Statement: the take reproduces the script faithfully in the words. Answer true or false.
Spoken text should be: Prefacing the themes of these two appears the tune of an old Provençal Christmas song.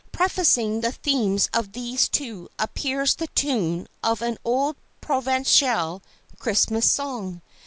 true